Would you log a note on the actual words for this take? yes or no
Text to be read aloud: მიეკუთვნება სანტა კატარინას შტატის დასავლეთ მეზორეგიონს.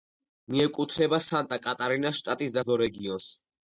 yes